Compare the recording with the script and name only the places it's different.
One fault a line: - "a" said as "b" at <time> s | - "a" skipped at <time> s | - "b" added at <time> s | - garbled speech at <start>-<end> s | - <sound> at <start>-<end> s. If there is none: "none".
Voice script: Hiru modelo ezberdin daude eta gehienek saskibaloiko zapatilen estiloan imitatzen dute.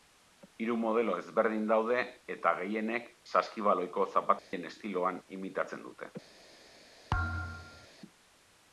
- dropout at 4.4-4.5 s
- thud at 7.1-7.9 s